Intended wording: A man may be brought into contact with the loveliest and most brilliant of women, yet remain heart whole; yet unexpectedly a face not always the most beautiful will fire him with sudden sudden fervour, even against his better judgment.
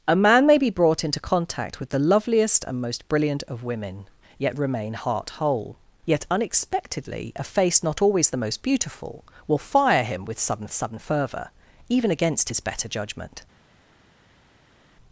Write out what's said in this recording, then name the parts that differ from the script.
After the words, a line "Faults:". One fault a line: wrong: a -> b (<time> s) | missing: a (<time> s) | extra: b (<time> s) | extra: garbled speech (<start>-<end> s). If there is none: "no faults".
A man may be brought into contact with the loveliest and most brilliant of women, yet remain heart whole; yet unexpectedly a face not always the most beautiful will fire him with sudden sudden fervour, even against his better judgment.
Faults:
no faults